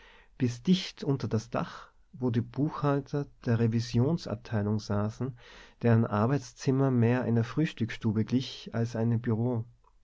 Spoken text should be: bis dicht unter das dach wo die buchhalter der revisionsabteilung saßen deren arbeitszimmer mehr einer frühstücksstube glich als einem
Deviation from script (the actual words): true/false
false